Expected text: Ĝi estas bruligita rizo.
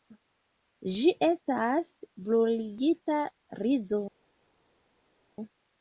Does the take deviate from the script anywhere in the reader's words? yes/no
no